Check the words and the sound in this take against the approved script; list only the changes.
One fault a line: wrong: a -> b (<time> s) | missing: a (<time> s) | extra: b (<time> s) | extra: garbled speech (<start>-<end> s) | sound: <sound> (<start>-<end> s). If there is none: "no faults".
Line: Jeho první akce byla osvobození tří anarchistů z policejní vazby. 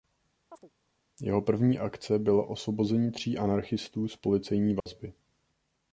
sound: chirp (0.5-0.7 s)
sound: dropout (4.8-4.9 s)